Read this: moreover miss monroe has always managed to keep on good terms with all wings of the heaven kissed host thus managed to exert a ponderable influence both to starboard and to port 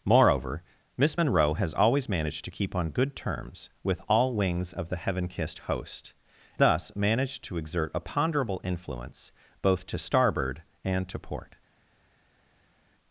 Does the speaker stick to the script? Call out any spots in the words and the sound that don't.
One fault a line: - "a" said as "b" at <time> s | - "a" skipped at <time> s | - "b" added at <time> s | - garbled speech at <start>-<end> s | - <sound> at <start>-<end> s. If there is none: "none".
none